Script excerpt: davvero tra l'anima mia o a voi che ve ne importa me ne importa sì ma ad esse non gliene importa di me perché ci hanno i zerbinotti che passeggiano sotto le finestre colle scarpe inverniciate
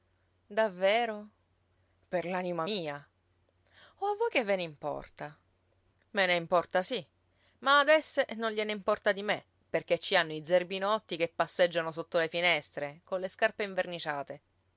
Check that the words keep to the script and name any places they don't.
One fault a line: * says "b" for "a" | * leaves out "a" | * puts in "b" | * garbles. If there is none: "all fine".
* says "per" for "tra"